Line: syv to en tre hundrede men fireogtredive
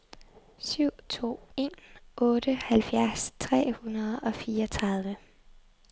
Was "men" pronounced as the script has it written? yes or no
no